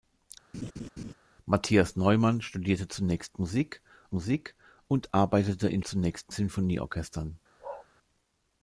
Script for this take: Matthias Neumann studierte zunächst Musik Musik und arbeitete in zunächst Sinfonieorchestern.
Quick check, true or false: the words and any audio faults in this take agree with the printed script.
false